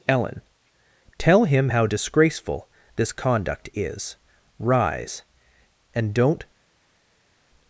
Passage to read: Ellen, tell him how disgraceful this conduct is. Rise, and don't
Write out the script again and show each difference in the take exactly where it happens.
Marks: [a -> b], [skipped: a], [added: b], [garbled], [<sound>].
Ellen, tell him how disgraceful this conduct is. Rise, and don't